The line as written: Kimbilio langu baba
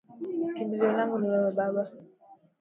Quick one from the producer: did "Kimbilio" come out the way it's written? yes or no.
yes